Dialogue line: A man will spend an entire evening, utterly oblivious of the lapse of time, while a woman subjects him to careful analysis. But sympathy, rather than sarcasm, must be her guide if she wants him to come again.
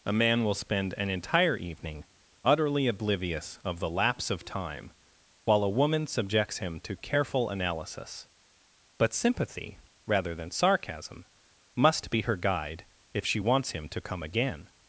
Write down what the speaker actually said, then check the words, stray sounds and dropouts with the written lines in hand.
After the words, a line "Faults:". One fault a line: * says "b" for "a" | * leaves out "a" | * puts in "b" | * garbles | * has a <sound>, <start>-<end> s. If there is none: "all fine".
A man will spend an entire evening, utterly oblivious of the lapse of time, while a woman subjects him to careful analysis. But sympathy, rather than sarcasm, must be her guide if she wants him to come again.
Faults:
all fine